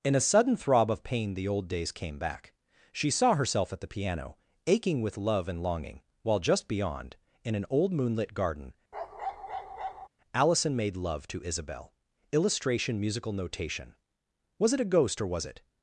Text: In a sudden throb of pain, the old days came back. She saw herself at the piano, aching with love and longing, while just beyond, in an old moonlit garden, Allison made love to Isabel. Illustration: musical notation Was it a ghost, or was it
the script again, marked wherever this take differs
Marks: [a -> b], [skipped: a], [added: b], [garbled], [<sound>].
In a sudden throb of pain, the old days came back. She saw herself at the piano, aching with love and longing, while just beyond, in an old moonlit garden, [bark] Allison made love to Isabel. Illustration: musical notation Was it a ghost, or was it